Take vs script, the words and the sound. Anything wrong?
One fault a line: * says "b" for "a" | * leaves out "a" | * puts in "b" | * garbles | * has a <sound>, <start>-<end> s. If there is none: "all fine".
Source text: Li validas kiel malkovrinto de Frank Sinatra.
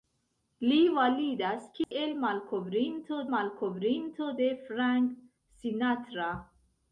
* has a dropout, 1.8-1.9 s
* puts in "malkovrinto"